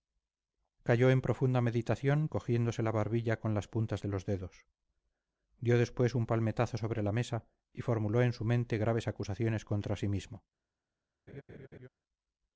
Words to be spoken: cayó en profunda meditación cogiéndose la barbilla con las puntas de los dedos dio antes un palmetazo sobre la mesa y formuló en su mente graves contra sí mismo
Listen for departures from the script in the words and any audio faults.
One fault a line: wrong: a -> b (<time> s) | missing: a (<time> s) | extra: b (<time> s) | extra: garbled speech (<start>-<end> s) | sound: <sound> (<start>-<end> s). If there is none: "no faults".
wrong: antes -> después (5.8 s)
extra: acusaciones (9.1 s)
sound: laugh (11.3-11.9 s)